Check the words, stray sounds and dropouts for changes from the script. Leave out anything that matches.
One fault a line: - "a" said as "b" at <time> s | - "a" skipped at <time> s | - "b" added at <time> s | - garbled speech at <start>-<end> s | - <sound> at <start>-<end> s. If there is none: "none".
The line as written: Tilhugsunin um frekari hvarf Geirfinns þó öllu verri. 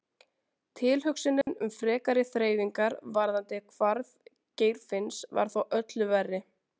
- dropout at 1.4-1.5 s
- "þreifingar varðandi" added at 2.3 s
- "var" added at 5.4 s